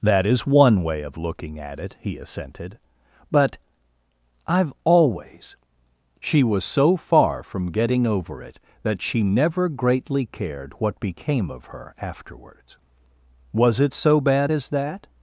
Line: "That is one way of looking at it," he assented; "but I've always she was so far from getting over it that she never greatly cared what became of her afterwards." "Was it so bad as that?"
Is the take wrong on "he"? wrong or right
right